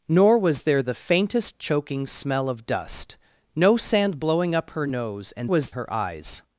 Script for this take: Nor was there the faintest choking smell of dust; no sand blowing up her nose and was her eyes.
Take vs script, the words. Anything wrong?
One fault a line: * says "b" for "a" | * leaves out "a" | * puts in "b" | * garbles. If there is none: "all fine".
all fine